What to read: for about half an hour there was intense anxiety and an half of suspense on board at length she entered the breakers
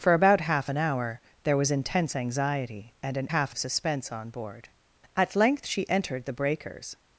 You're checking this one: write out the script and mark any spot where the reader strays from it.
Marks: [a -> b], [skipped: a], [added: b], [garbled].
for about half an hour there was intense anxiety and an half of suspense on board at length she entered the breakers